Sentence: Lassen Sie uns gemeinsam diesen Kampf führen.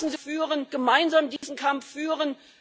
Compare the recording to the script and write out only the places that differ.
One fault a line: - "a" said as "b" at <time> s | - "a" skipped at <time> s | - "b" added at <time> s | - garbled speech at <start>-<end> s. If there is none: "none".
- "uns" said as "führen" at 0.2 s